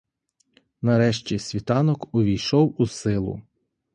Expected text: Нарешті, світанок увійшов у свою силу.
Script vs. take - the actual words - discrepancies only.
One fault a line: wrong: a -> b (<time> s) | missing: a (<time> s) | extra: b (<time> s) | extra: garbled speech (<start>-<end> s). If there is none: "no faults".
missing: свою (2.9 s)